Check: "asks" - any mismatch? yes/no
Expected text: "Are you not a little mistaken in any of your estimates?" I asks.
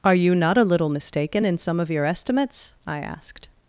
yes